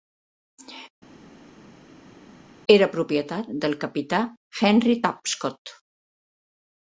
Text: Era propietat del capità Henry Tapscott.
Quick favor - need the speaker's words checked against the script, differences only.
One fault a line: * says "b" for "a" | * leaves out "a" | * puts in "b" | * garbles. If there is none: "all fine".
all fine